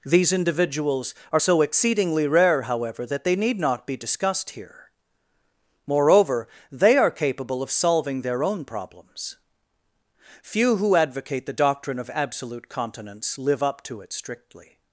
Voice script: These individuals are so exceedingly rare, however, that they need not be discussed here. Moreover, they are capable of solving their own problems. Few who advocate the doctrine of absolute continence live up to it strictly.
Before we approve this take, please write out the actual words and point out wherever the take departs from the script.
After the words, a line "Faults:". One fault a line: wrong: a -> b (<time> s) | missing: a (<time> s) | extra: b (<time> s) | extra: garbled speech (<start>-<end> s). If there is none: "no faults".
These individuals are so exceedingly rare, however, that they need not be discussed here. Moreover, they are capable of solving their own problems. Few who advocate the doctrine of absolute continence live up to it strictly.
Faults:
no faults